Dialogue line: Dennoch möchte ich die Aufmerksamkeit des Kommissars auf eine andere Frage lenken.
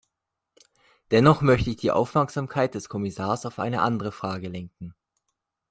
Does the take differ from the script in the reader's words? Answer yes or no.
no